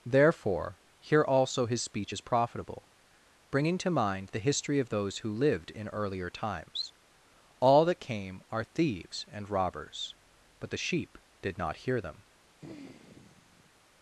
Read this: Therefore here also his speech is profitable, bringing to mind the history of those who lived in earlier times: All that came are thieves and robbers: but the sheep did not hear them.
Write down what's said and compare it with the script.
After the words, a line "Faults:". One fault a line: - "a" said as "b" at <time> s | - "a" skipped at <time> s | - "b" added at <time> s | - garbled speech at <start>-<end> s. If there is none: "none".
Therefore here also his speech is profitable, bringing to mind the history of those who lived in earlier times: All that came are thieves and robbers: but the sheep did not hear them.
Faults:
none